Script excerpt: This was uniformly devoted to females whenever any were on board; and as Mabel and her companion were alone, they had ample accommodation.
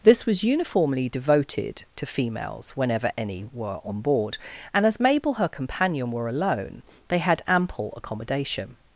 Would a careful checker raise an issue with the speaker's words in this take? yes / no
yes